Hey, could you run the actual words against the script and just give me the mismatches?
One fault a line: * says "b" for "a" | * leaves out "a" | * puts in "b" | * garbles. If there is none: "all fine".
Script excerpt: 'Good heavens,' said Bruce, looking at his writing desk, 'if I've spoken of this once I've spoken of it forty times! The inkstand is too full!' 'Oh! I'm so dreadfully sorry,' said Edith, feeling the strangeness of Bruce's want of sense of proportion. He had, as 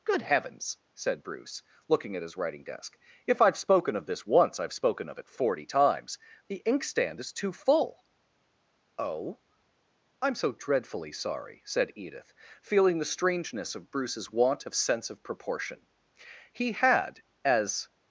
all fine